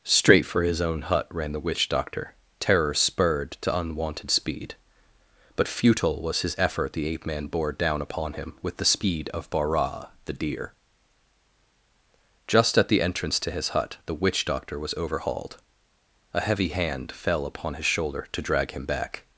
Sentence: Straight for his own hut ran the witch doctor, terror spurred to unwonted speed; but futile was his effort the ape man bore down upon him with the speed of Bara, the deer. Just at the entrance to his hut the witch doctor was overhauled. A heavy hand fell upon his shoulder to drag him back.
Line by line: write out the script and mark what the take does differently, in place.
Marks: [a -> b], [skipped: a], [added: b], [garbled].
Straight for his own hut ran the witch doctor, terror spurred to unwonted speed; but futile was his effort the ape man bore down upon him with the speed of Bara, the deer. Just at the entrance to his hut the witch doctor was overhauled. A heavy hand fell upon his shoulder to drag him back.